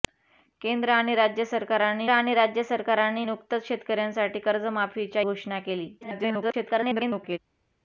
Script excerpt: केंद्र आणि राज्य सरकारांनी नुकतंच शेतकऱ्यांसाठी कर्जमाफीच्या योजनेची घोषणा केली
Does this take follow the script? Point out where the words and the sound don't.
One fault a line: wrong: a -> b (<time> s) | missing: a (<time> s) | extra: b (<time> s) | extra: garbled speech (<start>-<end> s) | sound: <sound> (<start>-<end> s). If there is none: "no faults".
extra: आणि राज्य सरकारांनी (2.1 s)
missing: योजनेची (5.2 s)
extra: garbled speech (6.0-7.4 s)